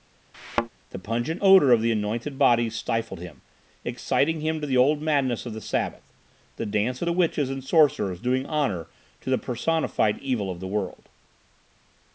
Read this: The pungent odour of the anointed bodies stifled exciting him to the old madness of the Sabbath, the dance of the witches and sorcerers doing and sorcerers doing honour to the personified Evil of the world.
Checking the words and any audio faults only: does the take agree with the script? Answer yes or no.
no